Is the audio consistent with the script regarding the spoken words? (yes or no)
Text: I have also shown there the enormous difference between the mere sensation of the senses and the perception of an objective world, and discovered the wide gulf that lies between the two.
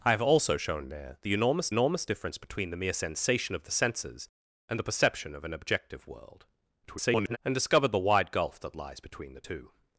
no